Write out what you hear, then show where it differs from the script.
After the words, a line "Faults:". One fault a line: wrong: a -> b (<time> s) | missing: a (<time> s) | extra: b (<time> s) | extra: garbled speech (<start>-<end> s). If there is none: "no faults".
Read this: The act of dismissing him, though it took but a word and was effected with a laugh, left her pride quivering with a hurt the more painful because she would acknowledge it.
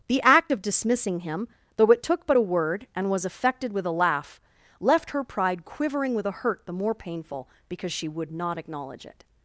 The act of dismissing him, though it took but a word and was effected with a laugh, left her pride quivering with a hurt the more painful because she would not acknowledge it.
Faults:
extra: not (8.3 s)